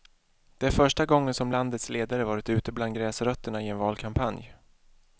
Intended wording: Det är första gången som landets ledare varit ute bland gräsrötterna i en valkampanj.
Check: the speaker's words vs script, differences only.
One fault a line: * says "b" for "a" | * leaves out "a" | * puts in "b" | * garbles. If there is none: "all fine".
all fine